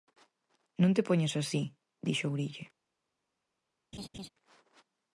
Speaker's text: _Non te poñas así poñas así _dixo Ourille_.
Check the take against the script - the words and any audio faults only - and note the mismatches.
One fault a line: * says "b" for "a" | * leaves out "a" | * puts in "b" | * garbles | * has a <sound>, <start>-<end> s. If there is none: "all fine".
* leaves out "poñas así"
* has a laugh, 3.9-4.3 s